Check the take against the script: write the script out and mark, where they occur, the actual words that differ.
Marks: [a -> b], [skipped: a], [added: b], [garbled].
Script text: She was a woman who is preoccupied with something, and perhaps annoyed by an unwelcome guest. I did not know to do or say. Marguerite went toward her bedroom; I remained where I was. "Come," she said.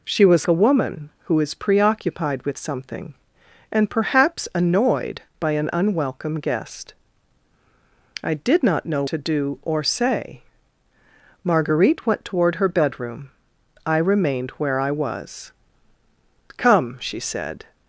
She was a woman who is preoccupied with something, and perhaps annoyed by an unwelcome guest. I did not know to do or say. Marguerite went toward her bedroom; I remained where I was. "Come," she said.